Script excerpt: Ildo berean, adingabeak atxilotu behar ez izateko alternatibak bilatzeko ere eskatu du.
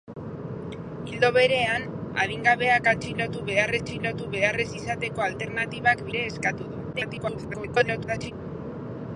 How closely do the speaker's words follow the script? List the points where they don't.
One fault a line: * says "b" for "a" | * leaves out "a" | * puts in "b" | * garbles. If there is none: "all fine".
* puts in "atxilotu behar"
* leaves out "bilatzeko"
* garbles